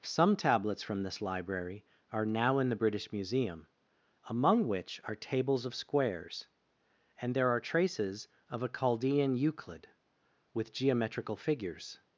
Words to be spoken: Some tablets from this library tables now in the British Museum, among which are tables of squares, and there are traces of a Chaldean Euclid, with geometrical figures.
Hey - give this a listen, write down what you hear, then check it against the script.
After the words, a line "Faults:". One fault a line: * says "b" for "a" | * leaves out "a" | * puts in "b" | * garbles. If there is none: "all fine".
Some tablets from this library are now in the British Museum, among which are tables of squares, and there are traces of a Chaldean Euclid, with geometrical figures.
Faults:
* says "are" for "tables"